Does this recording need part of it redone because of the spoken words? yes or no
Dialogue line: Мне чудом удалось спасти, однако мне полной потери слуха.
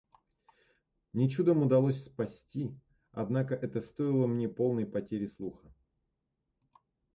yes